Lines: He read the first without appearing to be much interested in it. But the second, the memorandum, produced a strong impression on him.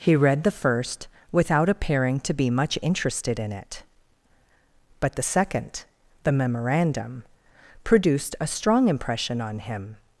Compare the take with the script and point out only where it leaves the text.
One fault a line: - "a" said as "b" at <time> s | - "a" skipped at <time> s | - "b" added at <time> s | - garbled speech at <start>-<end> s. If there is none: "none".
none